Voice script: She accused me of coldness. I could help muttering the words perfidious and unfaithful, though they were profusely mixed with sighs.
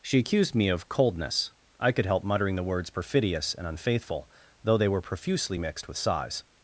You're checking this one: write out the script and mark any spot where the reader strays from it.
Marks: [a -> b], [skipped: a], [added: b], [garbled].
She accused me of coldness. I could help muttering the words perfidious and unfaithful, though they were profusely mixed with sighs.